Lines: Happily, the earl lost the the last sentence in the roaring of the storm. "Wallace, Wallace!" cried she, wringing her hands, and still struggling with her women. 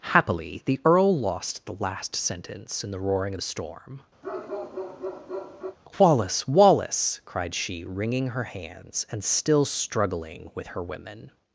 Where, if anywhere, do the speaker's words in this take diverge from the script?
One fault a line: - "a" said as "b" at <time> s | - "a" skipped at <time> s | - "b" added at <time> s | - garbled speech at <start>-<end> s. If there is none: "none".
- "the" skipped at 1.8 s